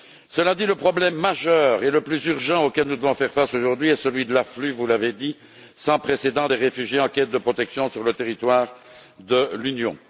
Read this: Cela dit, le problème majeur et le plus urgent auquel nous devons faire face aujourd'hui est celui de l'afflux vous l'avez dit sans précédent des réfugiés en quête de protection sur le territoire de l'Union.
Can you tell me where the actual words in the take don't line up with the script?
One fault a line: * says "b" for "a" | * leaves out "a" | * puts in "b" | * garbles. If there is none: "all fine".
all fine